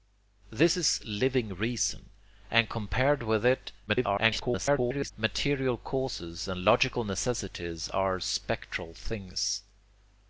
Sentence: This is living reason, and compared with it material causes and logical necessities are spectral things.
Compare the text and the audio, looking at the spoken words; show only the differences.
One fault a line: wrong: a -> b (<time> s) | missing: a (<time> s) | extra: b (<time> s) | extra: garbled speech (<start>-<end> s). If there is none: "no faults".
extra: garbled speech (3.9-5.1 s)